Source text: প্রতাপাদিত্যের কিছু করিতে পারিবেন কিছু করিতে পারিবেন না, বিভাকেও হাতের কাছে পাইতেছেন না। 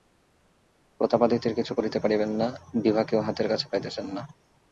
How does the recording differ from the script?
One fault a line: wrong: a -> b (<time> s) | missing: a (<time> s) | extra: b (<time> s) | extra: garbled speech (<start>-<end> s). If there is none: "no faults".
missing: কিছু করিতে পারিবেন (2.3 s)